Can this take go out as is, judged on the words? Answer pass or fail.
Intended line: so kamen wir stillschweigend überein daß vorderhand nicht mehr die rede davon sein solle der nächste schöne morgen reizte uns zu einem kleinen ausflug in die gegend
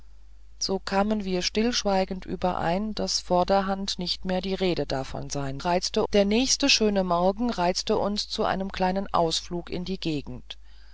fail